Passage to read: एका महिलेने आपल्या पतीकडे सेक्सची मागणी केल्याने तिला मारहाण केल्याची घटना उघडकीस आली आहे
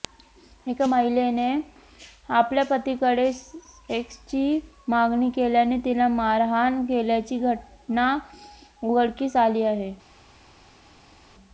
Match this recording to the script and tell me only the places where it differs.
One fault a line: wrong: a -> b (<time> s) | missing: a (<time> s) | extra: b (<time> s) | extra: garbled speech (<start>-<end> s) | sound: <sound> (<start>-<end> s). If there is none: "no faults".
no faults